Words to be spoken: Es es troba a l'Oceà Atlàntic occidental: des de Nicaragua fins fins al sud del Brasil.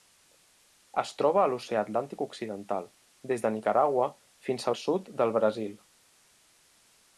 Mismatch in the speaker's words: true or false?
true